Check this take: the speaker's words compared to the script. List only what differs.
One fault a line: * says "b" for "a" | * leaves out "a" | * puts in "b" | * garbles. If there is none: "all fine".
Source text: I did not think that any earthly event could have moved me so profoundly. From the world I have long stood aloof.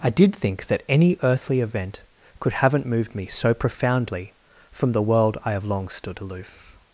* leaves out "not"
* says "haven't" for "have"